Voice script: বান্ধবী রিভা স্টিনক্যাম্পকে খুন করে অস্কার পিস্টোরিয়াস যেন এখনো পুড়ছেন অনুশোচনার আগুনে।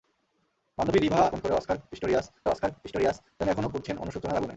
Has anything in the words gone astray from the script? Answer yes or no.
yes